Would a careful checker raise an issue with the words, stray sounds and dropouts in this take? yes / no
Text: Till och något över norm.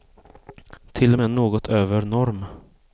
yes